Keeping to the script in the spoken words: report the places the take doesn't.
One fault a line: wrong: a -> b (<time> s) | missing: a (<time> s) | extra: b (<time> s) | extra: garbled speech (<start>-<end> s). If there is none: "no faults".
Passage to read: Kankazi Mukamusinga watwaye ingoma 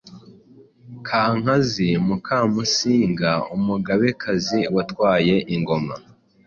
extra: umugabekazi (3.6 s)